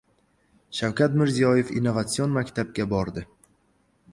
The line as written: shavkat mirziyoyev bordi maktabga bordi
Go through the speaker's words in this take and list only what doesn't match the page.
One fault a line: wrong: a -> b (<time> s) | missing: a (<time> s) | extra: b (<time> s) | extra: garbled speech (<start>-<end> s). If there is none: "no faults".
wrong: bordi -> innovatsion (1.8 s)